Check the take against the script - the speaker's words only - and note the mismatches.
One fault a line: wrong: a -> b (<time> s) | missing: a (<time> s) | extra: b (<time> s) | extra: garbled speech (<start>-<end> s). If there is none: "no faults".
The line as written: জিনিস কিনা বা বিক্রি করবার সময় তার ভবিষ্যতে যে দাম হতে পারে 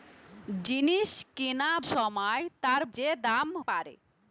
missing: বা বিক্রি করবার (1.7 s)
missing: ভবিষ্যতে (2.8 s)
missing: হতে (3.5 s)